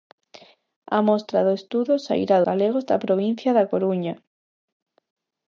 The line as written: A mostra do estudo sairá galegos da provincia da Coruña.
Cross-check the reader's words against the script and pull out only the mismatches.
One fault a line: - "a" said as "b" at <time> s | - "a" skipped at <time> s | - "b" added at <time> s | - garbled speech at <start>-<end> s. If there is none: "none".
none